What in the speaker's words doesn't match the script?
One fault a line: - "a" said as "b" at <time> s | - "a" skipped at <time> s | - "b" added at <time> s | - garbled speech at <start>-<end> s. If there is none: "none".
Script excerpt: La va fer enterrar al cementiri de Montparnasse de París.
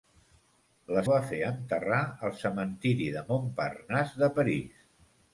none